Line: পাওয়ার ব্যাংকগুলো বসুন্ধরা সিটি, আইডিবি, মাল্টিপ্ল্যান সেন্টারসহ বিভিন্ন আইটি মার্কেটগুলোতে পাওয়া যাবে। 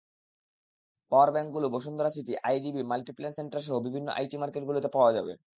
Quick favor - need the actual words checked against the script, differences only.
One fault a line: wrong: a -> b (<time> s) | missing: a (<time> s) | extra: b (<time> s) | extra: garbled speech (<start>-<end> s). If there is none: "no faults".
no faults